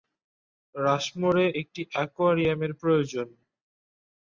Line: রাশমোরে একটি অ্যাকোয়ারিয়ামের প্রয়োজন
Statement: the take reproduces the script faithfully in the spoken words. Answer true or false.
true